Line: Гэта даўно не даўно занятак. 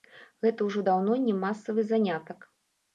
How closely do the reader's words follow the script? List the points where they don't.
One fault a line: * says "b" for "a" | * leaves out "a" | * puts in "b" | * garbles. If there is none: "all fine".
* puts in "ўжо"
* says "масавы" for "даўно"